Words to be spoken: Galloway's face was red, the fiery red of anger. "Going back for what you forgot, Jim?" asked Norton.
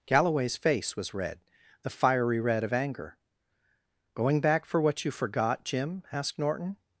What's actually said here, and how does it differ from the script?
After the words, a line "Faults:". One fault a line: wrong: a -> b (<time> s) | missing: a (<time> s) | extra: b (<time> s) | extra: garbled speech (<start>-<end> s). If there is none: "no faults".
Galloway's face was red, the fiery red of anger. "Going back for what you forgot, Jim?" asked Norton.
Faults:
no faults